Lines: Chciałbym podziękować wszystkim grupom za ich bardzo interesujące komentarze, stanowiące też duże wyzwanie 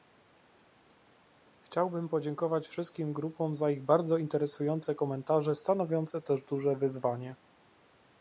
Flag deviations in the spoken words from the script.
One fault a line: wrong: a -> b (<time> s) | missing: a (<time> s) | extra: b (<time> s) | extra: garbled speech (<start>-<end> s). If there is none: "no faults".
no faults